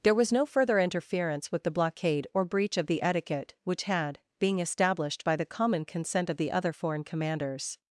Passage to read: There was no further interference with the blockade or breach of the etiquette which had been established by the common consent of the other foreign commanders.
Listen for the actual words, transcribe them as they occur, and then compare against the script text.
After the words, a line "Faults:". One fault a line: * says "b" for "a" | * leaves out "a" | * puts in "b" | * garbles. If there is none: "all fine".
There was no further interference with the blockade or breach of the etiquette which had being established by the common consent of the other foreign commanders.
Faults:
* says "being" for "been"